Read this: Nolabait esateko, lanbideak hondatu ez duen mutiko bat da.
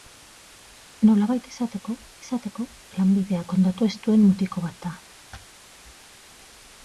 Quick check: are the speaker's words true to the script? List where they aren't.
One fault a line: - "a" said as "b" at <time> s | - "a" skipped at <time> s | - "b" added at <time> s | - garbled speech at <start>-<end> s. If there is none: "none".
- "esateko" added at 2.2 s